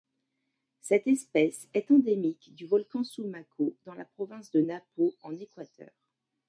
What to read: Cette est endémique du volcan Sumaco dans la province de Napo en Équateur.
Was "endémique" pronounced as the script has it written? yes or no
yes